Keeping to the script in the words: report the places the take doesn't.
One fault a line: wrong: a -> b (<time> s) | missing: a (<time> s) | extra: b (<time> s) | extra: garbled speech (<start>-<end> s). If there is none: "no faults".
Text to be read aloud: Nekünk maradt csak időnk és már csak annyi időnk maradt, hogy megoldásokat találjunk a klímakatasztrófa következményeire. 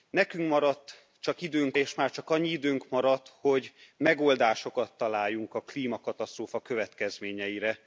no faults